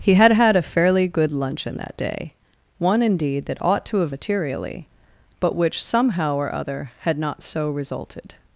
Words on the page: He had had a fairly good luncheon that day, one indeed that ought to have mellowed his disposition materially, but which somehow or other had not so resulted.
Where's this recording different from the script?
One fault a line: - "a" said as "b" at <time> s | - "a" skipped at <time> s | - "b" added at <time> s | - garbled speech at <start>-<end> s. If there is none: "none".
- "mellowed his disposition" skipped at 4.2 s